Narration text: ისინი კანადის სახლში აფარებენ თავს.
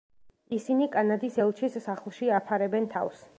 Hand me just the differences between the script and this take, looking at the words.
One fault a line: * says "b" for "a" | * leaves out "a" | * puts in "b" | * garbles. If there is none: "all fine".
* puts in "ელჩის"